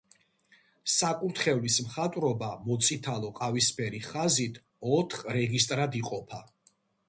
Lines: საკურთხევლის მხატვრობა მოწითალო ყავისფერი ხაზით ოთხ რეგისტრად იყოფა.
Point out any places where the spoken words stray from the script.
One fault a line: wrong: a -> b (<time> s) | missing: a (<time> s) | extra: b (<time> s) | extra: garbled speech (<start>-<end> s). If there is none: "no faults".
no faults